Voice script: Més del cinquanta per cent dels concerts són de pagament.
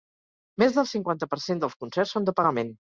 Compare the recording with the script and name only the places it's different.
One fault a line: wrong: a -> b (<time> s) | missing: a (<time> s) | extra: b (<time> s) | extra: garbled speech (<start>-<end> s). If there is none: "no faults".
no faults